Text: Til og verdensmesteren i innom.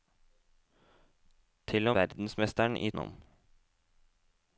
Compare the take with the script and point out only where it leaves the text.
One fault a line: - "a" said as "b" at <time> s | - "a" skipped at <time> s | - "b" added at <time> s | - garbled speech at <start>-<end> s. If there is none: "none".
none